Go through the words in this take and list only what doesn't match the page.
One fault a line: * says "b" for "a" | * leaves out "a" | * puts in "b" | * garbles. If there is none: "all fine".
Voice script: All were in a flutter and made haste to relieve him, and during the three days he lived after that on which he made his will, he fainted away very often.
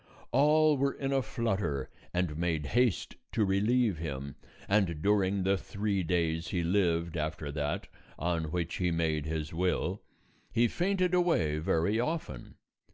all fine